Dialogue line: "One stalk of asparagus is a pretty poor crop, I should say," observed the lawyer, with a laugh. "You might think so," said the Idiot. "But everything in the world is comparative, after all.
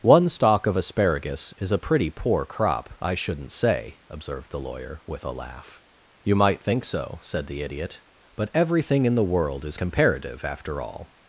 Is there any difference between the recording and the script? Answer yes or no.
yes